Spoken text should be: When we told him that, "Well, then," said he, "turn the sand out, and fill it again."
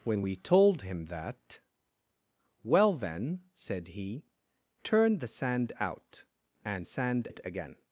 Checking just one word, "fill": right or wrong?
wrong